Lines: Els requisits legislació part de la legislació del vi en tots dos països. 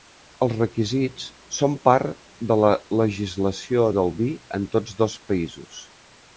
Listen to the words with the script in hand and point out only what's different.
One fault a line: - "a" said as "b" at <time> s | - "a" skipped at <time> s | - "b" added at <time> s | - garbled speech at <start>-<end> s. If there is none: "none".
- "legislació" said as "són" at 1.6 s